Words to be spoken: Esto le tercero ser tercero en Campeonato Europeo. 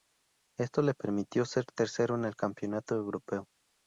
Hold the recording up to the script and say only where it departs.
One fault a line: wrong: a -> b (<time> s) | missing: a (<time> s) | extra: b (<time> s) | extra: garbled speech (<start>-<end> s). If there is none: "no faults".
wrong: tercero -> permitió (0.9 s)
extra: el (2.2 s)